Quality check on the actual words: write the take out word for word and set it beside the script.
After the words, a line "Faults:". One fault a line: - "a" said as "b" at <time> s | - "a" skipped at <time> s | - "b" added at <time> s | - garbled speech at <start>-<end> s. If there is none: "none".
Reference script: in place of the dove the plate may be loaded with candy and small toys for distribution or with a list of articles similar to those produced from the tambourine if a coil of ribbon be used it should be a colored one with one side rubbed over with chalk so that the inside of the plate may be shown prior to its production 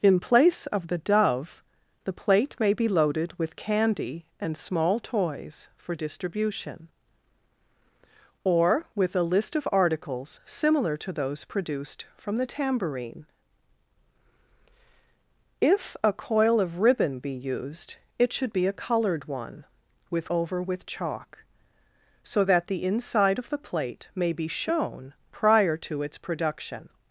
in place of the dove the plate may be loaded with candy and small toys for distribution or with a list of articles similar to those produced from the tambourine if a coil of ribbon be used it should be a colored one with over with chalk so that the inside of the plate may be shown prior to its production
Faults:
- "one side rubbed" skipped at 20.3 s